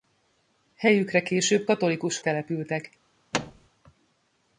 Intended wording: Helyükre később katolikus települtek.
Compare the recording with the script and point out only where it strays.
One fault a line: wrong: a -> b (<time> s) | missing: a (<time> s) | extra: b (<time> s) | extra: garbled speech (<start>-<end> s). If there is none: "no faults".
no faults